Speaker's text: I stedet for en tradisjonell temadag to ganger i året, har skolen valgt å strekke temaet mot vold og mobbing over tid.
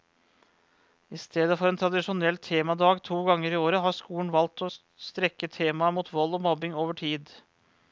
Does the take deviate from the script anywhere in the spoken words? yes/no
no